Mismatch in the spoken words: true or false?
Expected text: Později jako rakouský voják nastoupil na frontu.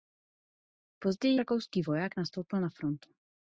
true